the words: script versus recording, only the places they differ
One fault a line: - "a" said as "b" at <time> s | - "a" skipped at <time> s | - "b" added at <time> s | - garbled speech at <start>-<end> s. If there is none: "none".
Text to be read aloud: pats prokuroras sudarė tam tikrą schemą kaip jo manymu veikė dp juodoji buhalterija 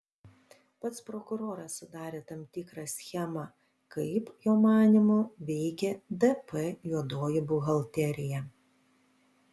none